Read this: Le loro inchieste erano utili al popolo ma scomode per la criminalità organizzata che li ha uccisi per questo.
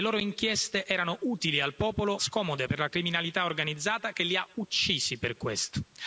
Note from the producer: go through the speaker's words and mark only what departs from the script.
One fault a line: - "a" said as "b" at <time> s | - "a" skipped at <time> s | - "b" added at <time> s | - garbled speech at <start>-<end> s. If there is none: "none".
- "ma" skipped at 2.2 s